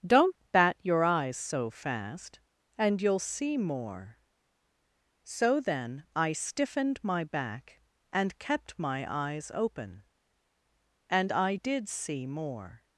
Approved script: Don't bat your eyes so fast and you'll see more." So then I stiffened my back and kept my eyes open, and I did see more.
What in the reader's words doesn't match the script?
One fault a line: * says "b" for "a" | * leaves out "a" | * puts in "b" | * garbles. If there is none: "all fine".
all fine